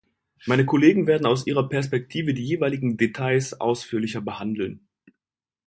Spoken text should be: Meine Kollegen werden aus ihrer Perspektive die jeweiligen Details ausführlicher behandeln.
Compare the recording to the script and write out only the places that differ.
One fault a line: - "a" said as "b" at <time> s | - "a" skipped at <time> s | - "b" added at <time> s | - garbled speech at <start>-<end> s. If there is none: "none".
none